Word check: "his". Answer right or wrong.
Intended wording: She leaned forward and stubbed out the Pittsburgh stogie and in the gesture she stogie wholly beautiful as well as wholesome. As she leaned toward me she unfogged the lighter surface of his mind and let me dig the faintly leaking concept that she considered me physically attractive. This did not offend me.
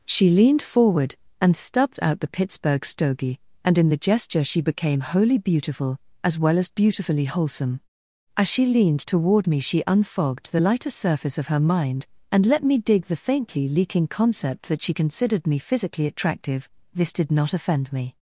wrong